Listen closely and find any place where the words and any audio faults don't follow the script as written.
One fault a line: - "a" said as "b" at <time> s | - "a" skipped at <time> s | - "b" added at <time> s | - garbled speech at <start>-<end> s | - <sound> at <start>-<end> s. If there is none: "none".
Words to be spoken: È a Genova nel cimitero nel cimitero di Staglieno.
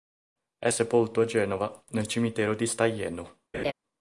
- "sepolto" added at 0.7 s
- "nel cimitero" skipped at 2.6 s
- laugh at 3.5-3.7 s